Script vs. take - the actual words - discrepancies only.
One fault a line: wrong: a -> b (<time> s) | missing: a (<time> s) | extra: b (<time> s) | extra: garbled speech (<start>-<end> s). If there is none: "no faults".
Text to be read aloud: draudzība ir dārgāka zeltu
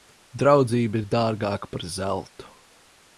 extra: par (1.7 s)